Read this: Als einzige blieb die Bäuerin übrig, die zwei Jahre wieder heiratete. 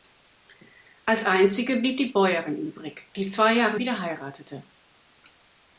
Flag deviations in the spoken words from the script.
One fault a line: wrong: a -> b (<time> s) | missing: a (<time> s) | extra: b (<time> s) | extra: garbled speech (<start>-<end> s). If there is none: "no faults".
no faults